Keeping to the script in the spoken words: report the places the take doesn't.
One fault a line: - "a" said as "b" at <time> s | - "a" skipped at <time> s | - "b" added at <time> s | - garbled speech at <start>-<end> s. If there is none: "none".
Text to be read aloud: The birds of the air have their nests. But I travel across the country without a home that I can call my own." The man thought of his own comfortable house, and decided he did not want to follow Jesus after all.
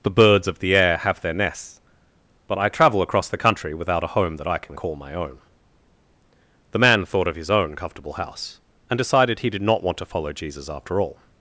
none